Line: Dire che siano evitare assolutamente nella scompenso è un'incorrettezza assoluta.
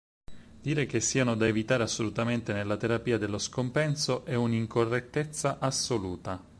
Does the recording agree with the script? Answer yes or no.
no